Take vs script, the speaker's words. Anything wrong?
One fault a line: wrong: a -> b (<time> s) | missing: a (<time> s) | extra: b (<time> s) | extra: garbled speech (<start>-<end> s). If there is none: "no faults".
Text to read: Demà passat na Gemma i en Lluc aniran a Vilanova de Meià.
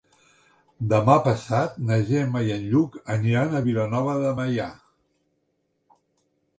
no faults